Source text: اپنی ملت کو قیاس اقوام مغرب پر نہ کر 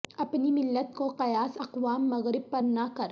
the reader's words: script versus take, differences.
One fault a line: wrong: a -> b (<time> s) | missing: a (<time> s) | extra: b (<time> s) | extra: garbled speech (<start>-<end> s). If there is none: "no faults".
no faults